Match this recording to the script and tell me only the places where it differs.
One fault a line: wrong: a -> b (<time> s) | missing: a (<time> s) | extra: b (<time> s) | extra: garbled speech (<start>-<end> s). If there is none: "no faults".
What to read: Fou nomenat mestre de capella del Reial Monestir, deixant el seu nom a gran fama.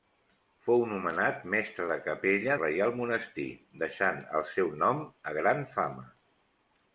missing: del (2.6 s)